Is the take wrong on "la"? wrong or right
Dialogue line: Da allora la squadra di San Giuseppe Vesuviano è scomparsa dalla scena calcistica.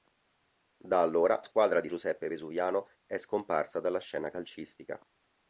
wrong